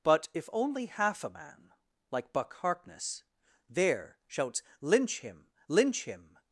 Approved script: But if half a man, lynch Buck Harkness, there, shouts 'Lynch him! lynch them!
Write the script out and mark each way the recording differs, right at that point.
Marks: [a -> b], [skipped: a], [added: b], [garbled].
But if [added: only] half a man, [lynch -> like] Buck Harkness, there, shouts 'Lynch him! lynch [them! -> him]